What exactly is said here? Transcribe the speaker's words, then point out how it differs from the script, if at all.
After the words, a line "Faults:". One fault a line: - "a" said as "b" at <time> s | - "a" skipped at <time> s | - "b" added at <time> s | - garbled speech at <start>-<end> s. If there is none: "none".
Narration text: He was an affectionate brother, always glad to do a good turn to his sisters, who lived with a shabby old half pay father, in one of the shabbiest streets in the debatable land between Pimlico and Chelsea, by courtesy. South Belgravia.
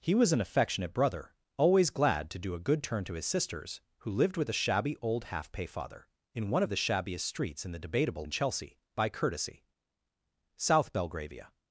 He was an affectionate brother, always glad to do a good turn to his sisters, who lived with a shabby old half pay father, in one of the shabbiest streets in the debatable and Chelsea, by courtesy. South Belgravia.
Faults:
- "land between Pimlico" skipped at 8.2 s